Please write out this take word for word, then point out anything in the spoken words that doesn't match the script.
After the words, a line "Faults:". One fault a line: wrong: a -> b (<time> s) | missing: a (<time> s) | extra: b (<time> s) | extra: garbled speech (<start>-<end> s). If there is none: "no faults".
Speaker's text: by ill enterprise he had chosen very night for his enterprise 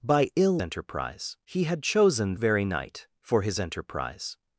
by ill enterprise he had chosen very night for his enterprise
Faults:
no faults